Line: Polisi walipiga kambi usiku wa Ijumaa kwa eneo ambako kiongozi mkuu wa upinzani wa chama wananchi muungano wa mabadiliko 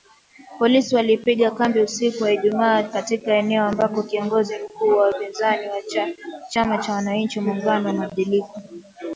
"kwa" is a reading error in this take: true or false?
true